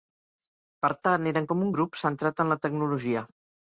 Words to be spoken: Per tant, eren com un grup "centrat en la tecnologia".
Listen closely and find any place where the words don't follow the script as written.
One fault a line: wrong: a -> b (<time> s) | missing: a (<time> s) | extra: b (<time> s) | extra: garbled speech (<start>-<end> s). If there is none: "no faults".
no faults